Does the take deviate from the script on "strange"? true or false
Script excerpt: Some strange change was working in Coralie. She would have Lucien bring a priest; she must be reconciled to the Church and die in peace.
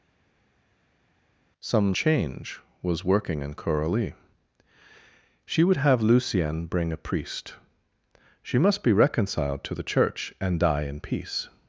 true